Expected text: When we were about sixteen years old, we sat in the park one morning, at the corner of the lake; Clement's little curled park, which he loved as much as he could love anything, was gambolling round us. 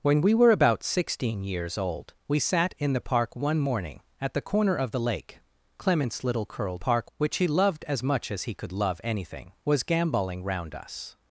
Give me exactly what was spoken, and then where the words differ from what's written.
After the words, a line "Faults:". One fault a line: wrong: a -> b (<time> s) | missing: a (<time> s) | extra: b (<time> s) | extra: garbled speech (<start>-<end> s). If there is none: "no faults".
When we were about sixteen years old, we sat in the park one morning, at the corner of the lake; Clement's little curled park, which he loved as much as he could love anything, was gambolling round us.
Faults:
no faults